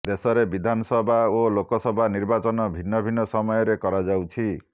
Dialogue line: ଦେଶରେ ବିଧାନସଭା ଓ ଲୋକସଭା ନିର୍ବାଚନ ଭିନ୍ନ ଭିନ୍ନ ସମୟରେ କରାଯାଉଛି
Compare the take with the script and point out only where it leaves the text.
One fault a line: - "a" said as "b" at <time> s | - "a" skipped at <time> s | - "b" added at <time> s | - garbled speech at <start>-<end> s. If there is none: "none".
none